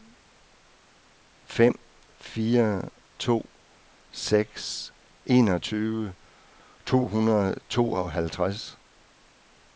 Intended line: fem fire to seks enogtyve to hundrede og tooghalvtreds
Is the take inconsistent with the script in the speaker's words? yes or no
no